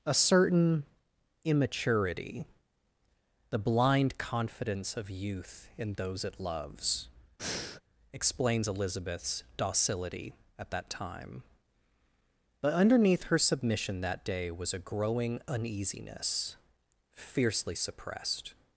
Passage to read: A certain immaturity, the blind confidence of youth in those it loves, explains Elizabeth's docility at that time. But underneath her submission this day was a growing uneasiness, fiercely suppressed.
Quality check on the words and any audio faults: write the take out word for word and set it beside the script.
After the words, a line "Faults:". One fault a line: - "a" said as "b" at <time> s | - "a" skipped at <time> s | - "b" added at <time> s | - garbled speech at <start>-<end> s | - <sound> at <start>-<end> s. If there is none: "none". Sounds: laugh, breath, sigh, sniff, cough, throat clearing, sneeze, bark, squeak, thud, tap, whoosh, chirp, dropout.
A certain immaturity, the blind confidence of youth in those it loves, explains Elizabeth's docility at that time. But underneath her submission that day was a growing uneasiness, fiercely suppressed.
Faults:
- breath at 7.4-7.8 s
- "this" said as "that" at 14.0 s